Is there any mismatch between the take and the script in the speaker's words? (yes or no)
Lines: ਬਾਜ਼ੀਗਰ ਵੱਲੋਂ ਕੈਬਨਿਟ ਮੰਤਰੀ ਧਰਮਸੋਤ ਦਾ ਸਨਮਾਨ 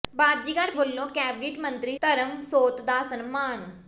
no